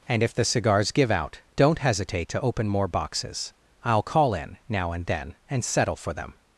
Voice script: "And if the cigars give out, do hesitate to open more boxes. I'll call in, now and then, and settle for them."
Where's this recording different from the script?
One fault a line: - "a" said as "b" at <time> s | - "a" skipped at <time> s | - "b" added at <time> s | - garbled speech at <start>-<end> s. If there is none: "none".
- "do" said as "don't" at 1.6 s